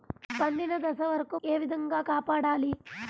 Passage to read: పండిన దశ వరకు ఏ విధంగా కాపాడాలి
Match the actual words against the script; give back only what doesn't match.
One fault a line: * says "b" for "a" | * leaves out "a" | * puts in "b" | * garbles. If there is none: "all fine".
all fine